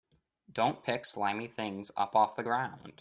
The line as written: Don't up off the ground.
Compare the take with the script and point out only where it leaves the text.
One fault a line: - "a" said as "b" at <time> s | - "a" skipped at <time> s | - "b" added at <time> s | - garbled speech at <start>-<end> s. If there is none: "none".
- "pick slimy things" added at 0.8 s